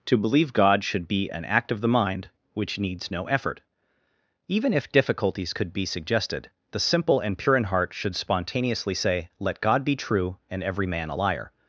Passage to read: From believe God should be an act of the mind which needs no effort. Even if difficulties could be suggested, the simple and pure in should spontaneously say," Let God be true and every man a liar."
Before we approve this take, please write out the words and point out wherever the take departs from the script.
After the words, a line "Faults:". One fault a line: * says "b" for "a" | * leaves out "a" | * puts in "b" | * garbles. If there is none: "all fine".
To believe God should be an act of the mind which needs no effort. Even if difficulties could be suggested, the simple and pure in heart should spontaneously say," Let God be true and every man a liar."
Faults:
* says "To" for "From"
* puts in "heart"